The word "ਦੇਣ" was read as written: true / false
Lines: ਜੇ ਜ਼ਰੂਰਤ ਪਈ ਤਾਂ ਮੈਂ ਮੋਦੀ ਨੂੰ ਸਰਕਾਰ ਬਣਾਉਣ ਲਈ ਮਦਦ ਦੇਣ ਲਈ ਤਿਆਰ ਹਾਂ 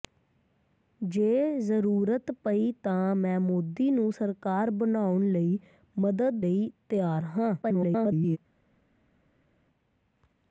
false